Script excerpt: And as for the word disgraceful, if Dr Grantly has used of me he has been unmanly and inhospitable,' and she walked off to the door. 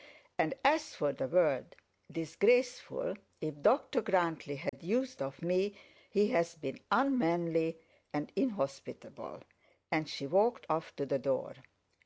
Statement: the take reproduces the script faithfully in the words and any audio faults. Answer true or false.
false